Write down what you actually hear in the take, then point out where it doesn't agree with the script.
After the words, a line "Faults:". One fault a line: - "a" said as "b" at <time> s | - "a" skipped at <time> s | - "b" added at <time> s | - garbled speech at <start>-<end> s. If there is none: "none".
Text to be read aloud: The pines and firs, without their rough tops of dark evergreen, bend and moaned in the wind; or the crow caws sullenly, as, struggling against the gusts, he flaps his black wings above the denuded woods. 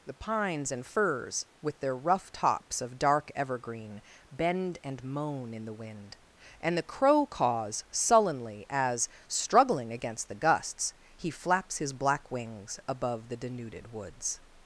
The pines and firs, with their rough tops of dark evergreen, bend and moan in the wind; and the crow caws sullenly, as, struggling against the gusts, he flaps his black wings above the denuded woods.
Faults:
- "without" said as "with" at 1.6 s
- "moaned" said as "moan" at 5.0 s
- "or" said as "and" at 6.6 s